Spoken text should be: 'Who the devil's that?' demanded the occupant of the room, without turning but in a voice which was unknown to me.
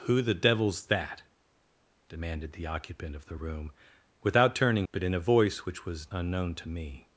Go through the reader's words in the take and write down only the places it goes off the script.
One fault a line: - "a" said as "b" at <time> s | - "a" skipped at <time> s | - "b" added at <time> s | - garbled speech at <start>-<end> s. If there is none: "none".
none